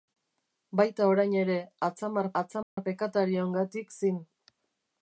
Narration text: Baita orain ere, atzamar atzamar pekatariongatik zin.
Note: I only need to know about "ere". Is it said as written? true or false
true